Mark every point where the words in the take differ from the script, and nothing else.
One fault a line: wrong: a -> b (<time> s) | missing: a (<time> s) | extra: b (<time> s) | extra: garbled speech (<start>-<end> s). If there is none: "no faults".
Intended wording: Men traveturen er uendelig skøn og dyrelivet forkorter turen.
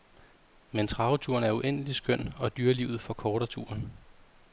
no faults